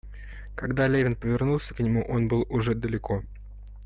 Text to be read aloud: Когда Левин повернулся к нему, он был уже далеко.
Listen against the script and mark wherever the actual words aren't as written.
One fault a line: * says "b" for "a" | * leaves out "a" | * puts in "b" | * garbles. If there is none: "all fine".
all fine